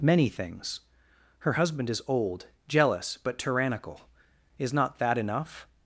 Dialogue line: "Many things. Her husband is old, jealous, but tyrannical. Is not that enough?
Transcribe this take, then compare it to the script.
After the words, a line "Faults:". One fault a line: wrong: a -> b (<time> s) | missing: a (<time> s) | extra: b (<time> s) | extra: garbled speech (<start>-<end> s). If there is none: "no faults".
"Many things. Her husband is old, jealous, but tyrannical. Is not that enough?
Faults:
no faults